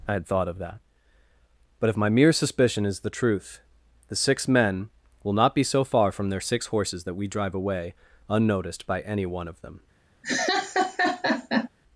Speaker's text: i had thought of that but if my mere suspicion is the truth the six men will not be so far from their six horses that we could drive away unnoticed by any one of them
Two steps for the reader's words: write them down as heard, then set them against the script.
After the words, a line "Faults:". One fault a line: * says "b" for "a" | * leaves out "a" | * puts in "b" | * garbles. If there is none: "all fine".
i had thought of that but if my mere suspicion is the truth the six men will not be so far from their six horses that we drive away unnoticed by any one of them
Faults:
* leaves out "could"